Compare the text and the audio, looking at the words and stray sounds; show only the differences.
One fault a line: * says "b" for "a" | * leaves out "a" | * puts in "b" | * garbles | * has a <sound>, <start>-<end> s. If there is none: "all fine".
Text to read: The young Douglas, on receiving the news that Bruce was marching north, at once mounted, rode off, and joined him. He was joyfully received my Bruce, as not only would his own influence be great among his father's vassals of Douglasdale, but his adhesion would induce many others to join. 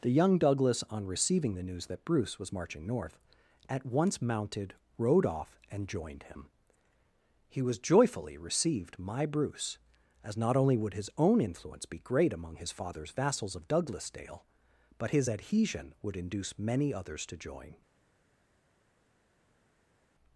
all fine